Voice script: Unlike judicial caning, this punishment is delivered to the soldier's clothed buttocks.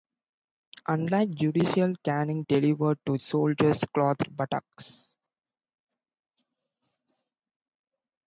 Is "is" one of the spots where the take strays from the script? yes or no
yes